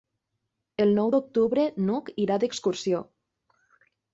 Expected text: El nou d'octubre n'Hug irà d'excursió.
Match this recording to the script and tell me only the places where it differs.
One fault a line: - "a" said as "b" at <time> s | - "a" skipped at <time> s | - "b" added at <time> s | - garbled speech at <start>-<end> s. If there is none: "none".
none